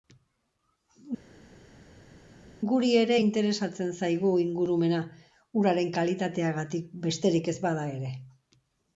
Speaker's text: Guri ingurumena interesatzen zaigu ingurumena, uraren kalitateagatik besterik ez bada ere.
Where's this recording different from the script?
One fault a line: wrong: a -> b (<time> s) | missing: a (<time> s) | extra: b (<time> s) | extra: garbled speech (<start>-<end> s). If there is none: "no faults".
wrong: ingurumena -> ere (3.0 s)